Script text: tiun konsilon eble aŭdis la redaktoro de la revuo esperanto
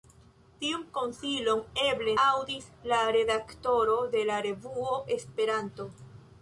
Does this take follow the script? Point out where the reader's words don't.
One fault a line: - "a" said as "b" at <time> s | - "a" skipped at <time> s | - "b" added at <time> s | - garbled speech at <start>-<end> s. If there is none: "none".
none